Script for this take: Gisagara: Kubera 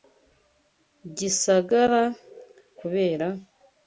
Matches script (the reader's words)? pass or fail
pass